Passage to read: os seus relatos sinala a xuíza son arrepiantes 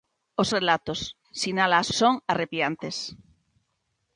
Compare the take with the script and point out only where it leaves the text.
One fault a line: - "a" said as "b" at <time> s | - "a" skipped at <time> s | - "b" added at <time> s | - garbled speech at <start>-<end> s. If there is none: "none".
- "seus" skipped at 0.5 s
- "xuíza" skipped at 1.9 s